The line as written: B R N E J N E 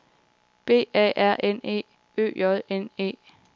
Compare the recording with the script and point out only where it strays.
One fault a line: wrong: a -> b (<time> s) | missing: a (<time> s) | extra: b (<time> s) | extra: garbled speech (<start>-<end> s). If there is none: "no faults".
extra: A (0.9 s)
extra: Ø (2.2 s)